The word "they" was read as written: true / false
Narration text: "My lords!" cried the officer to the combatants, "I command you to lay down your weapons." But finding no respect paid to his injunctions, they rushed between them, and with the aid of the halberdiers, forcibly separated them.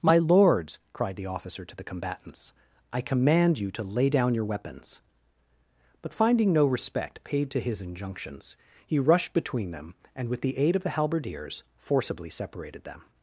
false